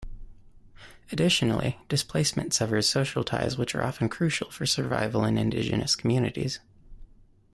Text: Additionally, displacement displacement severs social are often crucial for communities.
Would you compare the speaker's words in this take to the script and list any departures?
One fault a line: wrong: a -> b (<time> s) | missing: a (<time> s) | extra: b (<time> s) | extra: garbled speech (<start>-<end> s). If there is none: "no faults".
missing: displacement (2.5 s)
extra: ties which (3.2 s)
extra: survival in indigenous (4.7 s)